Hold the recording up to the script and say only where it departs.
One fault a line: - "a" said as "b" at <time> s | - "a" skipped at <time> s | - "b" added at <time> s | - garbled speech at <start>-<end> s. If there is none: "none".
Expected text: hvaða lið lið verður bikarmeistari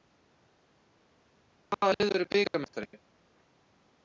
- "lið" skipped at 2.1 s